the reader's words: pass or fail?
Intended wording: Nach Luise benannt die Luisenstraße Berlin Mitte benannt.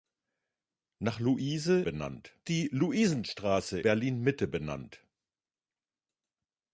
pass